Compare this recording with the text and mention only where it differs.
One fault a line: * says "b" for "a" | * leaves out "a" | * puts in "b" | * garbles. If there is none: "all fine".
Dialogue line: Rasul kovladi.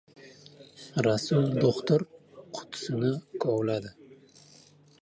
* puts in "do‘xtir qutisini"